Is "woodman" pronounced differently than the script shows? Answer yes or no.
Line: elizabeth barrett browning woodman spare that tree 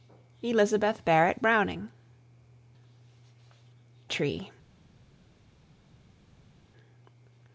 yes